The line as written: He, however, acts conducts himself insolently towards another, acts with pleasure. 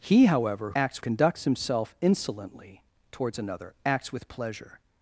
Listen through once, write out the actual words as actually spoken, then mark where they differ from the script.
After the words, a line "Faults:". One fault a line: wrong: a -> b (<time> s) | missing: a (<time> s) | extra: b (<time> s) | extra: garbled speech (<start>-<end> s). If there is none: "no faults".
He, however, acts conducts himself insolently towards another, acts with pleasure.
Faults:
no faults